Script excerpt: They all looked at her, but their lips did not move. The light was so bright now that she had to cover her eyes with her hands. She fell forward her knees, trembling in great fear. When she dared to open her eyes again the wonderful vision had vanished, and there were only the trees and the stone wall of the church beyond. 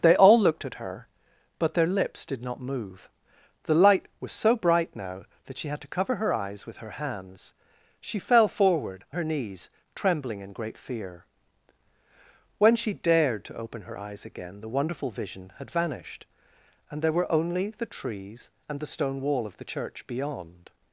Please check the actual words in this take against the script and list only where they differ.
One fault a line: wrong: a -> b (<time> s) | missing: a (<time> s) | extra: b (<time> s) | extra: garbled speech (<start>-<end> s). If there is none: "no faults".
no faults